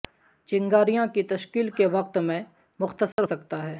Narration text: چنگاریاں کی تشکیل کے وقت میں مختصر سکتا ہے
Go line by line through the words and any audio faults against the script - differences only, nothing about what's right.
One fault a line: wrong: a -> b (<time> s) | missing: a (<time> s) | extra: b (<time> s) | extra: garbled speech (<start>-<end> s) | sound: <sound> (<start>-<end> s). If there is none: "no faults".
sound: dropout (3.1-3.2 s)